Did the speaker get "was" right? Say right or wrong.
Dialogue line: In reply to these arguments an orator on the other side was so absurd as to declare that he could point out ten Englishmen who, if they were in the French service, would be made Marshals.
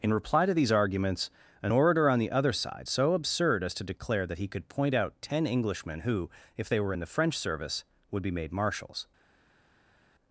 wrong